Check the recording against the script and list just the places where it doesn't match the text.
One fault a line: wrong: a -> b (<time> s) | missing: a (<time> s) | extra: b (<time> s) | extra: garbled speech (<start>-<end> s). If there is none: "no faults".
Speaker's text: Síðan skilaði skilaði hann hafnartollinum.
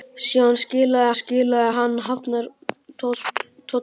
no faults